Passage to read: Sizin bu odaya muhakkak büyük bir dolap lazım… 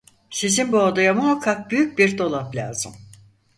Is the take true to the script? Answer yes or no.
yes